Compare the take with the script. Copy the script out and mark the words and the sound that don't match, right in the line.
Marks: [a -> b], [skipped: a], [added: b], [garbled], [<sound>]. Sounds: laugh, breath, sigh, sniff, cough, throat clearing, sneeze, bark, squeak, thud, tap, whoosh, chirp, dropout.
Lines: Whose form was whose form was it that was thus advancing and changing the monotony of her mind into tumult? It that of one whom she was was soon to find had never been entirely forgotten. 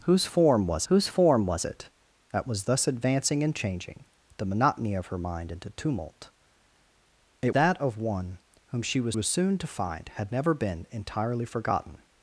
Whose form was whose form was it that was thus advancing and changing the monotony of her mind into tumult? It that of one whom she was was soon to find had never been entirely forgotten.